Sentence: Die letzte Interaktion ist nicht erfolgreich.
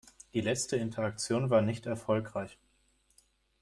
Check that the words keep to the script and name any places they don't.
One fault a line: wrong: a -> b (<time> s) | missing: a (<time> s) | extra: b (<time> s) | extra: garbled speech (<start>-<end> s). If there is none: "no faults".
wrong: ist -> war (1.5 s)